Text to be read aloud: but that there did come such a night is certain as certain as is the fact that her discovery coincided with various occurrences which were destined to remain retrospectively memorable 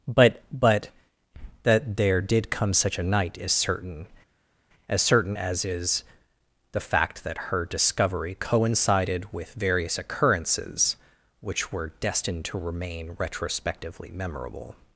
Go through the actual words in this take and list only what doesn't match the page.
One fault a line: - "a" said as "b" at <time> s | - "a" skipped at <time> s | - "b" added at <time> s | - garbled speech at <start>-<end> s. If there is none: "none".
- "but" added at 0.5 s